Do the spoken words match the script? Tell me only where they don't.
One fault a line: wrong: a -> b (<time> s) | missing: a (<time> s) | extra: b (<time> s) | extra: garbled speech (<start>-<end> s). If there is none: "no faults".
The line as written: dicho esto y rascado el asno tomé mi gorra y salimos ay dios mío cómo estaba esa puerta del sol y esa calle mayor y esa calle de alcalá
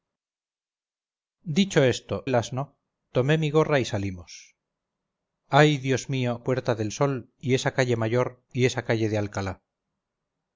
missing: y rascado (2.3 s)
missing: cómo estaba esa (6.4 s)